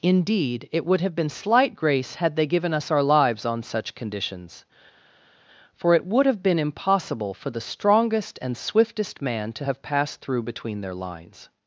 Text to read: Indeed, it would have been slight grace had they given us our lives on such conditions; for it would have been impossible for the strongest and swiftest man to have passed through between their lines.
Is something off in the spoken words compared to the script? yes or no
no